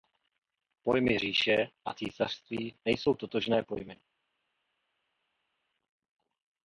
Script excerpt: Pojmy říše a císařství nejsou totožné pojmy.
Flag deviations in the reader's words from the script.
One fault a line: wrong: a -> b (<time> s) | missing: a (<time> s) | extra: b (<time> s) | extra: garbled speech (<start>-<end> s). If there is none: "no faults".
no faults